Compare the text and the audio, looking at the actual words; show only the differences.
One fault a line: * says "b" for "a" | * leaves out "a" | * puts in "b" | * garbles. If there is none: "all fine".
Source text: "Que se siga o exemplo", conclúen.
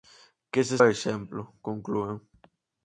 * leaves out "siga"